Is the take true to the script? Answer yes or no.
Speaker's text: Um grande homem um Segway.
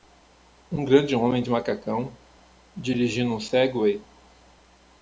no